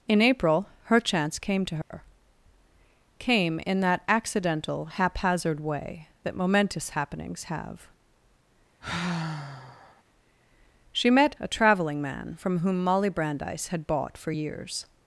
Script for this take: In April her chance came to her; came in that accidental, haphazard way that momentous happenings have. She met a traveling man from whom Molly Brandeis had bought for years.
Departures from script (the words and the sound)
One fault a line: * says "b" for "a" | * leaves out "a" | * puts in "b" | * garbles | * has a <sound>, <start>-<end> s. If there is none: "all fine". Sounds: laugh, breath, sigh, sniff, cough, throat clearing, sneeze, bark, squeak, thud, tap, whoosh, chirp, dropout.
* has a dropout, 1.8-1.9 s
* has a sigh, 8.8-10.0 s